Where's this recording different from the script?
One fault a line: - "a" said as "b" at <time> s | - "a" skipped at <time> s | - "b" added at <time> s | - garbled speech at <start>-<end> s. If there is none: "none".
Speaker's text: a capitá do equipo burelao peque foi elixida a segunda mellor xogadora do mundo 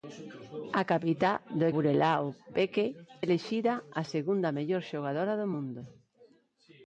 - "equipo" skipped at 1.6 s
- "foi" skipped at 2.9 s